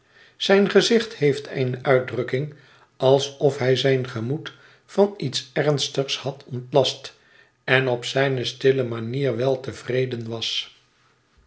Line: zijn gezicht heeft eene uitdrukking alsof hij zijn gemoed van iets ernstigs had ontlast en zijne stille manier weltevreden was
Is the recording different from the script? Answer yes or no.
yes